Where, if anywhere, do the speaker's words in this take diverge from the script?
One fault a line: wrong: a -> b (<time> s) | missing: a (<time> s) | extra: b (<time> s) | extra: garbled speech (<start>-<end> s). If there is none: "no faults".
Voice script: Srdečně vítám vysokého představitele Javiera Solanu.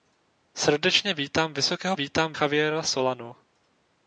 wrong: představitele -> vítám (1.9 s)